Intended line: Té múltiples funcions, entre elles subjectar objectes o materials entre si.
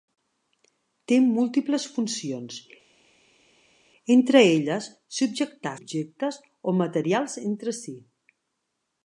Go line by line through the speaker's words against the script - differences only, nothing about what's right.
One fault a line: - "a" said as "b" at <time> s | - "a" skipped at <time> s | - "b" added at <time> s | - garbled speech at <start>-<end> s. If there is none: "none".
none